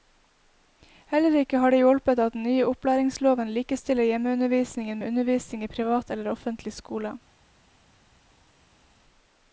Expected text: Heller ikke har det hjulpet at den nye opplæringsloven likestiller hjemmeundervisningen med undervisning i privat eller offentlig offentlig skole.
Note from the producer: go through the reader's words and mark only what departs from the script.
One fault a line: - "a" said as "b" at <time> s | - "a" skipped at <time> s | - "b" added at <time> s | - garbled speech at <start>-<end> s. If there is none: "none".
- "offentlig" skipped at 6.7 s